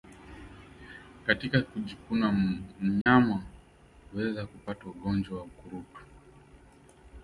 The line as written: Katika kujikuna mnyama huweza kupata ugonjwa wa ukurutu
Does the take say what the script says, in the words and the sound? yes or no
no